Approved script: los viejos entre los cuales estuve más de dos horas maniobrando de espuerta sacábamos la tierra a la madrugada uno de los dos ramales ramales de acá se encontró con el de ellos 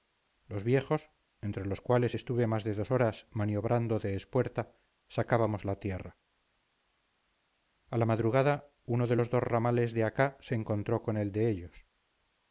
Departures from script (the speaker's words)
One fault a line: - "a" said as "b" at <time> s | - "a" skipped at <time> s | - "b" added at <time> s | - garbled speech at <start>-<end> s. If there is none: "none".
- "ramales" skipped at 9.9 s